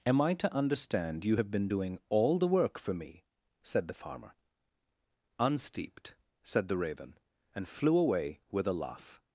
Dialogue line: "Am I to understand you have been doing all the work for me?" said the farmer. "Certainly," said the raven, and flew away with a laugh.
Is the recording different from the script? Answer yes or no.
yes